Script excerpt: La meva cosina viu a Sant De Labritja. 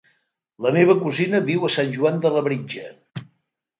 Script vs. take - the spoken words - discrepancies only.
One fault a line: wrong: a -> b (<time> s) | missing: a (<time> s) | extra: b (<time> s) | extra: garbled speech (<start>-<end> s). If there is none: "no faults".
extra: Joan (2.0 s)